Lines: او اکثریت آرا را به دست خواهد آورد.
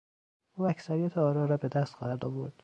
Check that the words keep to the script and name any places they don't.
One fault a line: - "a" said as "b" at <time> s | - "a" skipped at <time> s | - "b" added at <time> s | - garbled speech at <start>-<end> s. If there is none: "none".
none